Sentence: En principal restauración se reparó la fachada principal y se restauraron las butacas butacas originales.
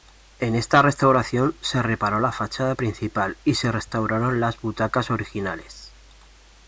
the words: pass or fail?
fail